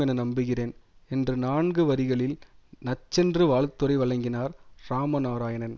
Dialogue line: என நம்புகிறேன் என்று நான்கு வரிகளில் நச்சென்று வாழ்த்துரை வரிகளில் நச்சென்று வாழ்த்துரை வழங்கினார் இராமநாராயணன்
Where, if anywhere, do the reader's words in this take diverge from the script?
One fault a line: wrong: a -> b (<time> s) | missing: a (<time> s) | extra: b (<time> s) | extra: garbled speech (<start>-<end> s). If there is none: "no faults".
missing: வரிகளில் நச்சென்று வாழ்த்துரை (4.0 s)